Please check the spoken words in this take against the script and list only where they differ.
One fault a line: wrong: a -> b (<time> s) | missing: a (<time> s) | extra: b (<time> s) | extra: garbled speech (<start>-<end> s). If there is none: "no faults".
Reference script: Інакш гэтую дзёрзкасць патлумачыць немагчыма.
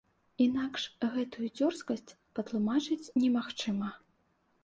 no faults